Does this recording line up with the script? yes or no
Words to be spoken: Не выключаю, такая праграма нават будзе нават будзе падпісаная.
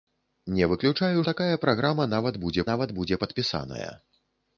yes